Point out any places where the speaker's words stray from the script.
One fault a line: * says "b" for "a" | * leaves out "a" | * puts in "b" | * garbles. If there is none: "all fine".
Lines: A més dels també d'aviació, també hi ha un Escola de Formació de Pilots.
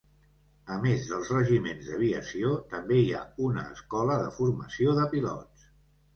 * says "regiments" for "també"
* says "una" for "un"